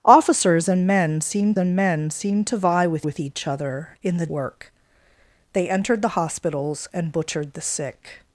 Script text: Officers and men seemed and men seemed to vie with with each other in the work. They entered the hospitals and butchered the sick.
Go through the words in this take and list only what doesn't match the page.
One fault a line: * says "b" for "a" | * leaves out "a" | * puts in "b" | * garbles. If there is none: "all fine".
all fine